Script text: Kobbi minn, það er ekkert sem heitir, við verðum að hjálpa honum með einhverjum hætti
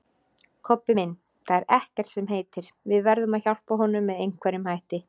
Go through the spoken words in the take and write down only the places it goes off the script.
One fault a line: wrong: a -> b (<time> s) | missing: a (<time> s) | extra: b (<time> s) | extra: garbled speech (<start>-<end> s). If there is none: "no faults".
no faults